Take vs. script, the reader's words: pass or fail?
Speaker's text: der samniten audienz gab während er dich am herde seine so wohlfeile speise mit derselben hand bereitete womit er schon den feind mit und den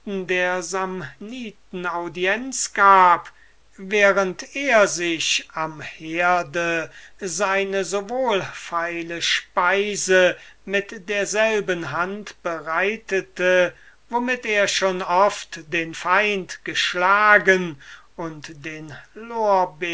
fail